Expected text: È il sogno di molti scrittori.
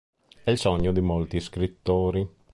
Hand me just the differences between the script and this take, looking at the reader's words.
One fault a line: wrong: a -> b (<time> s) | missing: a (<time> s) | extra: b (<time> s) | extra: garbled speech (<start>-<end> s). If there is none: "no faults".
no faults